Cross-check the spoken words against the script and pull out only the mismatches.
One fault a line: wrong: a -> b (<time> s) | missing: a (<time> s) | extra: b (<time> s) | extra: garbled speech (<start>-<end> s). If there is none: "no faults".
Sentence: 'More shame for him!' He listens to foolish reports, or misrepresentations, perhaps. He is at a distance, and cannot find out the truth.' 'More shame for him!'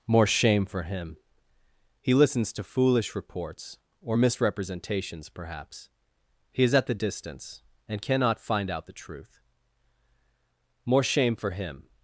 wrong: a -> the (6.9 s)